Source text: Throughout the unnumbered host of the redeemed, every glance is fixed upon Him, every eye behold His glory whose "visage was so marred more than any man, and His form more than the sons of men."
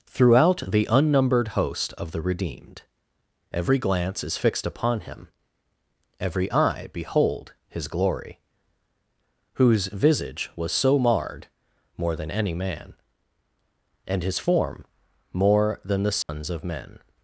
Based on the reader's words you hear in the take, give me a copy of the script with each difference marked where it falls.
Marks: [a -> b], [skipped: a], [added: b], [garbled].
Throughout the unnumbered host of the redeemed, every glance is fixed upon Him, every eye behold His glory whose "visage was so marred more than any man, and His form more than the sons of men."